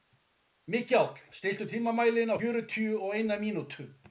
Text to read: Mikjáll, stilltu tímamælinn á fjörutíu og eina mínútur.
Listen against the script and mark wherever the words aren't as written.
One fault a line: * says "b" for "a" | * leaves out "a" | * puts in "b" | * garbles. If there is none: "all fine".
all fine